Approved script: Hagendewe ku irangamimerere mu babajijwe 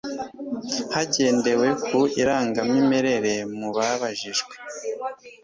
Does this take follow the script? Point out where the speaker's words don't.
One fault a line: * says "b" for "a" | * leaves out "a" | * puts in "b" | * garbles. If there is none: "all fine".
all fine